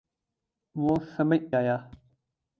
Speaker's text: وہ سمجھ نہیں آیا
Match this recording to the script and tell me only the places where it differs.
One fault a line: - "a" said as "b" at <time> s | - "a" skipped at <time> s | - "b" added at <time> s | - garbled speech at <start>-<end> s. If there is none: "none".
- "نہیں" skipped at 1.4 s